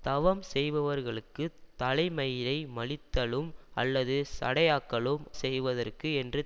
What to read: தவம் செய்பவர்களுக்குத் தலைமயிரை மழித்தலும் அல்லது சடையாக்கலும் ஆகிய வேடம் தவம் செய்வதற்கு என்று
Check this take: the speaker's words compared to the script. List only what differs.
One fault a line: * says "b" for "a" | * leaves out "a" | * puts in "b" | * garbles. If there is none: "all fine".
* leaves out "ஆகிய வேடம் தவம்"